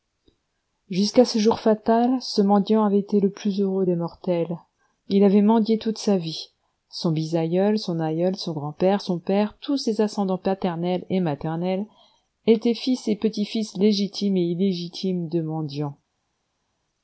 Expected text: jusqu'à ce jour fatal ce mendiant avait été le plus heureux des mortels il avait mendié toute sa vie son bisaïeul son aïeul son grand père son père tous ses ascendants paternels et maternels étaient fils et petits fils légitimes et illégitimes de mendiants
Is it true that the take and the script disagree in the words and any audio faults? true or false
false